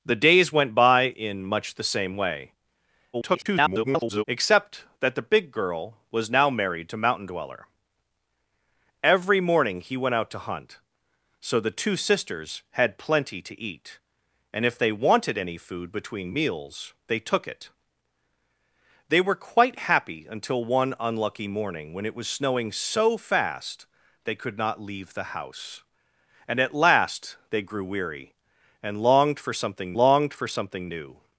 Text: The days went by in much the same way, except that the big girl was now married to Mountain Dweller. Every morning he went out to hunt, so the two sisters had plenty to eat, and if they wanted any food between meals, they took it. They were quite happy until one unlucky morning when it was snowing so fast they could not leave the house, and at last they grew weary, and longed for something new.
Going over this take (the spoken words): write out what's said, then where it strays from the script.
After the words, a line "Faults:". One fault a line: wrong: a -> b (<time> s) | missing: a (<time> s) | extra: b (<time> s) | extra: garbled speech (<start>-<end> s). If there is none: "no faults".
The days went by in much the same way, [garbled] except that the big girl was now married to Mountain Dweller. Every morning he went out to hunt, so the two sisters had plenty to eat, and if they wanted any food between meals, they took it. They were quite happy until one unlucky morning when it was snowing so fast they could not leave the house, and at last they grew weary, and longed for something longed for something new.
Faults:
extra: garbled speech (3.1-4.2 s)
extra: longed for something (30.0 s)